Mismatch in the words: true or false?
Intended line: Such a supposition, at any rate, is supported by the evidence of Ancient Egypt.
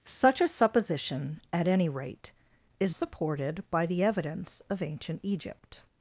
false